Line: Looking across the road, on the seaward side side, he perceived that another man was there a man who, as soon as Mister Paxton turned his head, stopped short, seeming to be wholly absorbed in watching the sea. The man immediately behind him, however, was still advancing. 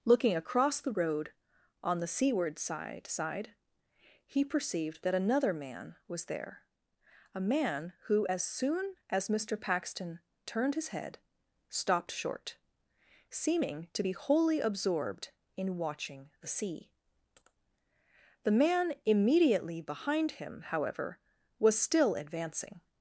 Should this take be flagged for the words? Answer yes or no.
no